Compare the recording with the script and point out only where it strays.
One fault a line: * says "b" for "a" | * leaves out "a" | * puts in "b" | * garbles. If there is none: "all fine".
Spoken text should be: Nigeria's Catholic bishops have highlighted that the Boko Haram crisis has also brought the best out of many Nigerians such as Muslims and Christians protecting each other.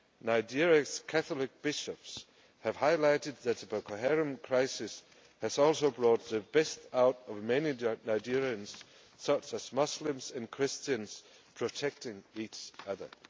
all fine